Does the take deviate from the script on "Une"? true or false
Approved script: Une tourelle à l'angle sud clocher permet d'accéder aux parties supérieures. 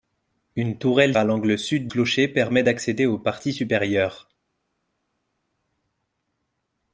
false